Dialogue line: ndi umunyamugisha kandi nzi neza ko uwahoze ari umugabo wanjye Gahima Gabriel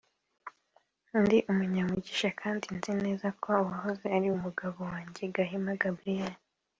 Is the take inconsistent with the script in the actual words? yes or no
no